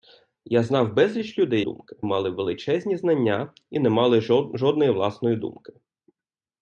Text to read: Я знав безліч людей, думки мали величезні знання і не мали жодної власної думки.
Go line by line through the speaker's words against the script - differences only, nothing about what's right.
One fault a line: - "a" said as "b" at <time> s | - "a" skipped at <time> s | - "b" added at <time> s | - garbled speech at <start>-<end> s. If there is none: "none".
none